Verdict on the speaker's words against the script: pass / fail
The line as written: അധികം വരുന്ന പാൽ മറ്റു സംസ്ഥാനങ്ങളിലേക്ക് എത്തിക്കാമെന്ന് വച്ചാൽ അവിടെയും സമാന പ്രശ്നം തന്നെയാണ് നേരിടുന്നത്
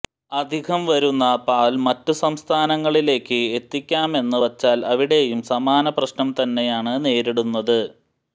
pass